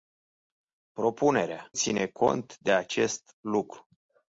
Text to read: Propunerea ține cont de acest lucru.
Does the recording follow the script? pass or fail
pass